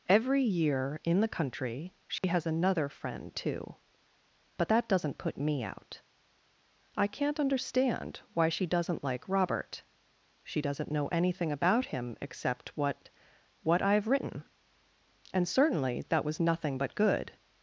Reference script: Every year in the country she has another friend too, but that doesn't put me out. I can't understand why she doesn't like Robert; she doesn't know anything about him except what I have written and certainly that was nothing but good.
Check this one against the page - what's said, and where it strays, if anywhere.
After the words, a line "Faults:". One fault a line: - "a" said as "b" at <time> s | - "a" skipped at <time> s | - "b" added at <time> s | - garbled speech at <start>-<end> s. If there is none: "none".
Every year in the country she has another friend too, but that doesn't put me out. I can't understand why she doesn't like Robert; she doesn't know anything about him except what what I have written and certainly that was nothing but good.
Faults:
- "what" added at 13.6 s